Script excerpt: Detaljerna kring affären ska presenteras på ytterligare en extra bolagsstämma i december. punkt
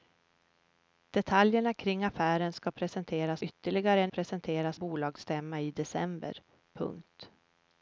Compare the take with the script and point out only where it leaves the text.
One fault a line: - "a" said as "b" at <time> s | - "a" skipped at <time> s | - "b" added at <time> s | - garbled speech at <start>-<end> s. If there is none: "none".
- "på" skipped at 3.4 s
- "extra" said as "presenteras" at 4.1 s